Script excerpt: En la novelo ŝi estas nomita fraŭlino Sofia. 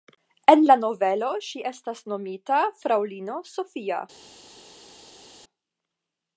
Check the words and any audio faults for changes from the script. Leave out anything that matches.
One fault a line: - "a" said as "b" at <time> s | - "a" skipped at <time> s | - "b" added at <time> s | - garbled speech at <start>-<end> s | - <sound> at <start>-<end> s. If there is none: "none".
none